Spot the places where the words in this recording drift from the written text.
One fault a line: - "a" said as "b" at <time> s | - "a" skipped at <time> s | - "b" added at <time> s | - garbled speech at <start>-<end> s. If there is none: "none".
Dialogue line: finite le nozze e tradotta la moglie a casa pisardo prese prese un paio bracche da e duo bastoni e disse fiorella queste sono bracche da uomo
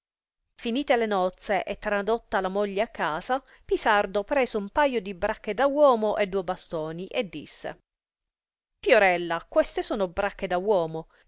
- "prese" skipped at 4.5 s
- "di" added at 5.0 s
- "uomo" added at 5.7 s